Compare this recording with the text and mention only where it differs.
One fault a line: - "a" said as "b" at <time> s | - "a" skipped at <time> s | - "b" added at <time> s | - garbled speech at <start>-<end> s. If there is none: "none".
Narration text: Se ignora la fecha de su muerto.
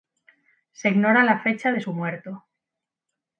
none